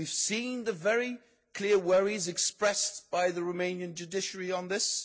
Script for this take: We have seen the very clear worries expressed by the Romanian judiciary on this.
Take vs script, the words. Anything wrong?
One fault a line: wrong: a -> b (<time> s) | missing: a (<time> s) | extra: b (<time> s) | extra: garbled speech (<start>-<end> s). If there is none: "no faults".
no faults